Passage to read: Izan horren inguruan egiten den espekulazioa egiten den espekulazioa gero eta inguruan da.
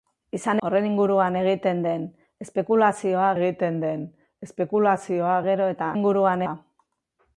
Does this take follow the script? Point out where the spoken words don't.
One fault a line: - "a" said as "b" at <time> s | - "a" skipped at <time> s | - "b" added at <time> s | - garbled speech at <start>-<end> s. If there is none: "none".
none